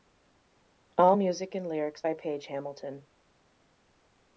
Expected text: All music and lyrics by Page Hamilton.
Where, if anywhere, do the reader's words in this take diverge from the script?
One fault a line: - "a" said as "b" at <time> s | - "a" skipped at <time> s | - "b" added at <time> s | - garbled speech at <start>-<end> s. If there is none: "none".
none